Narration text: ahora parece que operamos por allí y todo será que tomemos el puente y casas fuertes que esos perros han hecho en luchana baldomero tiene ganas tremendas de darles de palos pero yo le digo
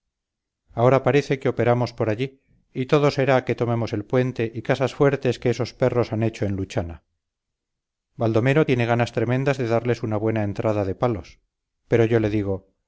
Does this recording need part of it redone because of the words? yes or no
yes